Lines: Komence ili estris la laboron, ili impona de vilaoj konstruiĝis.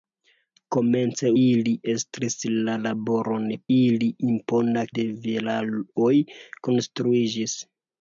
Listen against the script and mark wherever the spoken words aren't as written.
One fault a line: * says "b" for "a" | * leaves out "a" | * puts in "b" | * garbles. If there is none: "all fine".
all fine